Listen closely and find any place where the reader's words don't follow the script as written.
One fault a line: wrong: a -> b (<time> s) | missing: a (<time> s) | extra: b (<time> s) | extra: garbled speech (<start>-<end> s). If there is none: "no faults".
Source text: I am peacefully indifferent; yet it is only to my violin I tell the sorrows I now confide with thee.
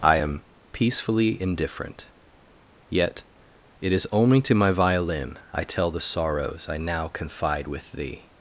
no faults